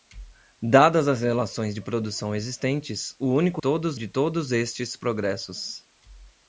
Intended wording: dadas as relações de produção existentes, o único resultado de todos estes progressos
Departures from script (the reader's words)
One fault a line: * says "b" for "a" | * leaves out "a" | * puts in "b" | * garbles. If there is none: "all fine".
* says "todos" for "resultado"